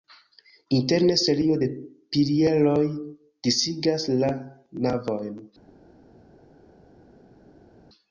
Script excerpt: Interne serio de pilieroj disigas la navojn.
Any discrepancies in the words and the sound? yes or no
no